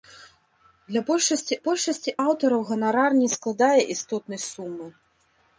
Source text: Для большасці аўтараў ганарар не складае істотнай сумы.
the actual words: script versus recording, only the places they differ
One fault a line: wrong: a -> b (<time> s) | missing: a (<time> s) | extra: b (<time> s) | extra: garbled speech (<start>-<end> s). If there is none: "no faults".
extra: большасці (1.7 s)